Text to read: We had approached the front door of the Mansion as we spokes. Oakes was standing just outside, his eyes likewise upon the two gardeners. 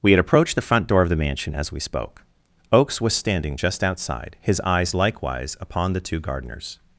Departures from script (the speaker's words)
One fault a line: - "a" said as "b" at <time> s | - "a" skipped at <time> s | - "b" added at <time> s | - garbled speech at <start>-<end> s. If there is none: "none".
- "spokes" said as "spoke" at 1.8 s